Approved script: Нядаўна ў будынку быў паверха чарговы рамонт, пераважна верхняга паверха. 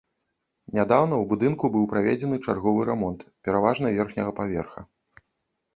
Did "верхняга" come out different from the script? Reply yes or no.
no